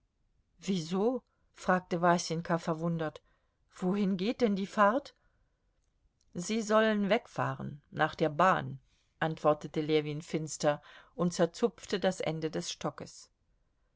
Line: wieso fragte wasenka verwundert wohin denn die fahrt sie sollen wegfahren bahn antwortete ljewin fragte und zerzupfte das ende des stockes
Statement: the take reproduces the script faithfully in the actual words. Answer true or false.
false